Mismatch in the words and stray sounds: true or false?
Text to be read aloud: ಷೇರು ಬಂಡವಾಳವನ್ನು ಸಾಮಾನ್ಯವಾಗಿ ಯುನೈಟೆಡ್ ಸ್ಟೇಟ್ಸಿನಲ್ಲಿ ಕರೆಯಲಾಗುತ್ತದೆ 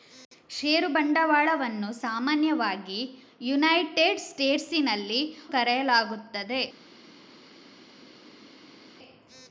false